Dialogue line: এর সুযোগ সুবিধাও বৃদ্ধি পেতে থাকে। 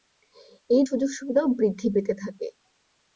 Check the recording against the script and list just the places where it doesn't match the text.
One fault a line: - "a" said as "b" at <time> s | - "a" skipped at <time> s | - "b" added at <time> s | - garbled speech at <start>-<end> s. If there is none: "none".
none